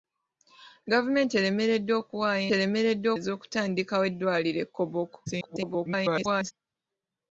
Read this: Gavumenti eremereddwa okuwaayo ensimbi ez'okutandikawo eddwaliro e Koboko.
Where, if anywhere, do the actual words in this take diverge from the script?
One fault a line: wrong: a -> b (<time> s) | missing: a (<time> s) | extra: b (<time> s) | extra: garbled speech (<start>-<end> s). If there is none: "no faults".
wrong: ensimbi -> eremereddwa (2.5 s)
extra: garbled speech (5.3-6.5 s)